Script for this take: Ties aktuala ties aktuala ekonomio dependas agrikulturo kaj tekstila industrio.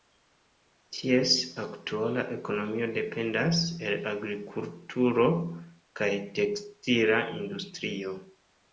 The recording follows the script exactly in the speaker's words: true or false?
false